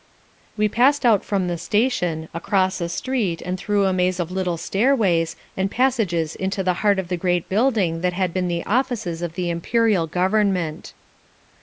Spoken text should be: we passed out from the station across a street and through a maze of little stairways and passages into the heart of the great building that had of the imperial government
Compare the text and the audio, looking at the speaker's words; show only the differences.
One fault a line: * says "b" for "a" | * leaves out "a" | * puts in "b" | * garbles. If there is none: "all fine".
* puts in "been the offices"